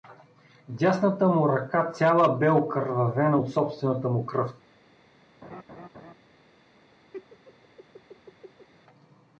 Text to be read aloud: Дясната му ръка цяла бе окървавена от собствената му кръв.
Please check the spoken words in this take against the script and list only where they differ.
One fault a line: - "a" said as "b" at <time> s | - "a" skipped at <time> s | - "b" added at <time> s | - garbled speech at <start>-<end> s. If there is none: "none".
none